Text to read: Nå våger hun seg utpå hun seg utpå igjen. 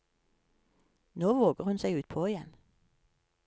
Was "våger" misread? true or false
false